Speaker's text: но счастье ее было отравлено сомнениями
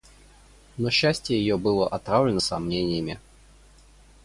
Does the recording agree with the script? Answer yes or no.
yes